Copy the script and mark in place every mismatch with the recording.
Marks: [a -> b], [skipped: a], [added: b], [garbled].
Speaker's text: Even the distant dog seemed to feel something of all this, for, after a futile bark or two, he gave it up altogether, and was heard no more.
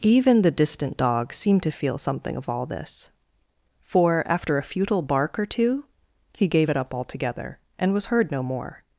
Even the distant dog seemed to feel something of all this, for, after a futile bark or two, he gave it up altogether, and was heard no more.